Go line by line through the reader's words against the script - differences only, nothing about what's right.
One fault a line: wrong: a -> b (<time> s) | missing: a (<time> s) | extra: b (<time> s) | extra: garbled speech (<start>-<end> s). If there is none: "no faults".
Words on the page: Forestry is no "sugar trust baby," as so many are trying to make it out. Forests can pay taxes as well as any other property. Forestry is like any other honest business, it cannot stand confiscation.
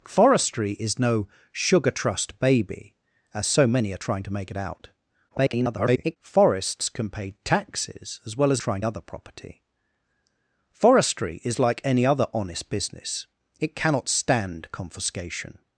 extra: garbled speech (5.3-6.2 s)
wrong: any -> trying (8.6 s)